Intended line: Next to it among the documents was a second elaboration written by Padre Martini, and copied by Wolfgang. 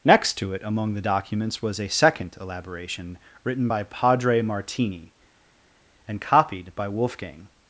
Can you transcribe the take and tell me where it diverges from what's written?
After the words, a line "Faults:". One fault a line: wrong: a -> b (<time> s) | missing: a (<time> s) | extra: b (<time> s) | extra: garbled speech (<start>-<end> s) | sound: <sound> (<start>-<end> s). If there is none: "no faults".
Next to it among the documents was a second elaboration written by Padre Martini, and copied by Wolfgang.
Faults:
no faults